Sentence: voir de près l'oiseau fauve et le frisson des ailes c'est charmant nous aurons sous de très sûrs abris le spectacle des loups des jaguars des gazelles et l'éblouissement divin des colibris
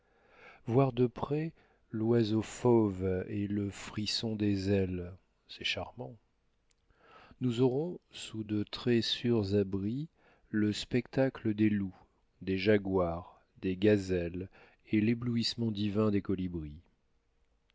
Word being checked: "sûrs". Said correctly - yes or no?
yes